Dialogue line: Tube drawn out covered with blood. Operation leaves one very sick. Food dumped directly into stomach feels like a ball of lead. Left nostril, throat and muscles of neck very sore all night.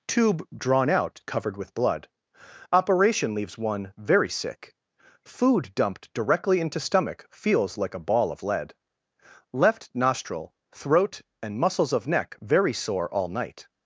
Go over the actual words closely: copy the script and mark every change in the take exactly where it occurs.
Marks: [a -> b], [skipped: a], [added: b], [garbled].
Tube drawn out covered with blood. Operation leaves one very sick. Food dumped directly into stomach feels like a ball of lead. Left nostril, throat and muscles of neck very sore all night.